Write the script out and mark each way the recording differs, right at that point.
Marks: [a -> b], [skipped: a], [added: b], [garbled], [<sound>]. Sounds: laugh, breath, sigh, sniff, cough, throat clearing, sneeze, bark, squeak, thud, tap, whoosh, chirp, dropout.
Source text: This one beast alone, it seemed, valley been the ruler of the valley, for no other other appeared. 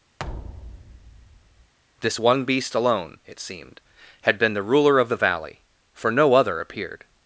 [thud] This one beast alone, it seemed, [valley -> had] been the ruler of the valley, for no other [skipped: other] appeared.